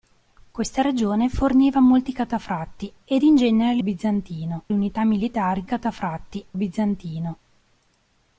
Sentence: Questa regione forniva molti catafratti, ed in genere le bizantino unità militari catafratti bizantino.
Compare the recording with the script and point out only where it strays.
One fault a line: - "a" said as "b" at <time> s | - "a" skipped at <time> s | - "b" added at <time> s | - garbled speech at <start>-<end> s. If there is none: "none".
none